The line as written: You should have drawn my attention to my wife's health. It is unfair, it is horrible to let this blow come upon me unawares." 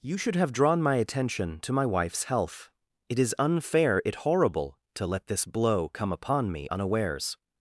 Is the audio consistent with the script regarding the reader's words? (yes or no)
no